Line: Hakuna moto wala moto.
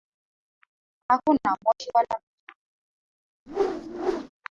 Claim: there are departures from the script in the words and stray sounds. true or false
true